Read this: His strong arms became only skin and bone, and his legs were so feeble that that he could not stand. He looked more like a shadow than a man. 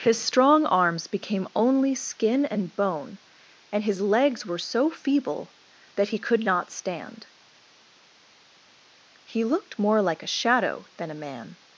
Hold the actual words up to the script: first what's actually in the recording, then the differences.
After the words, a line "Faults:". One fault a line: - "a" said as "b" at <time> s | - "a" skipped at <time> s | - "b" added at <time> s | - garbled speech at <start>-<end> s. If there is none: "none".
His strong arms became only skin and bone, and his legs were so feeble that he could not stand. He looked more like a shadow than a man.
Faults:
- "that" skipped at 6.1 s